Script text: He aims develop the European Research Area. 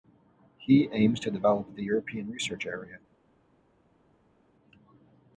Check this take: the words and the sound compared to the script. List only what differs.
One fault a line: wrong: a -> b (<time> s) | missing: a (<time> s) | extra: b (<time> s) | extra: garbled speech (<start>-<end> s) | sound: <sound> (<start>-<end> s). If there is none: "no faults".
extra: to (1.2 s)